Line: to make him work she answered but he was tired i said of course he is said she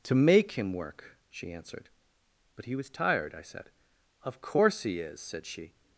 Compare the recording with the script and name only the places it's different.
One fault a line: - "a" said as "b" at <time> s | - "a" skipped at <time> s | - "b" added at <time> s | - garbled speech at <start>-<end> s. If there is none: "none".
none